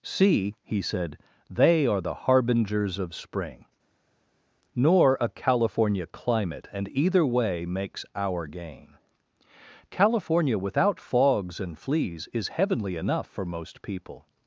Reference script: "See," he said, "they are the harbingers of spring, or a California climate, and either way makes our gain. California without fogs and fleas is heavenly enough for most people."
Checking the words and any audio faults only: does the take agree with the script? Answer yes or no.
no